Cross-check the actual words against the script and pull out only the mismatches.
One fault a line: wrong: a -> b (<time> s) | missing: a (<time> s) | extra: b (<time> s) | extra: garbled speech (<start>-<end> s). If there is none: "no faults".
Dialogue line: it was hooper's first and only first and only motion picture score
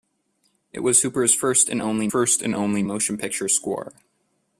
no faults